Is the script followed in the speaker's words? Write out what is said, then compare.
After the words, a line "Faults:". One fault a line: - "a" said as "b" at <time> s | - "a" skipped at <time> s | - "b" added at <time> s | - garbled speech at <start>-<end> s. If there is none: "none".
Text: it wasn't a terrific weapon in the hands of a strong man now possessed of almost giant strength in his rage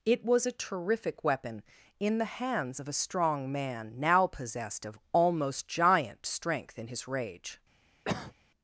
it was a terrific weapon in the hands of a strong man now possessed of almost giant strength in his rage
Faults:
- "wasn't" said as "was" at 0.2 s